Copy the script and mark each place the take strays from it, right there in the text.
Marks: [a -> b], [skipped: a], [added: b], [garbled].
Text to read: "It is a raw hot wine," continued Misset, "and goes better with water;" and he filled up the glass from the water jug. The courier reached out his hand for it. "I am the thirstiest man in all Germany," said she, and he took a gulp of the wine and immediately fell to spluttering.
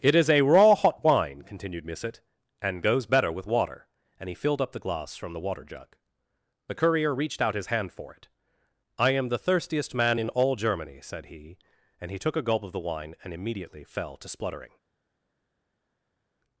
"It is a raw hot wine," continued Misset, "and goes better with water;" and he filled up the glass from the water jug. The courier reached out his hand for it. "I am the thirstiest man in all Germany," said [she, -> he] and he took a gulp of the wine and immediately fell to spluttering.